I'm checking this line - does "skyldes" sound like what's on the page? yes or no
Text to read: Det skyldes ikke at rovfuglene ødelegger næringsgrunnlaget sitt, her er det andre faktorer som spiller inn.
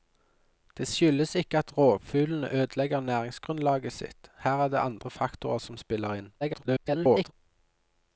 yes